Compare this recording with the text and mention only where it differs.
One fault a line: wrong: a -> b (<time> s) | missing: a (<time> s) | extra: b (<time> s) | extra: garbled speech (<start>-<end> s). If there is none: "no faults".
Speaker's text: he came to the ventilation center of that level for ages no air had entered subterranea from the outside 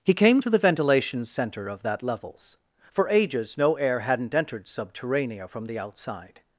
wrong: level -> levels (2.0 s)
wrong: had -> hadn't (4.0 s)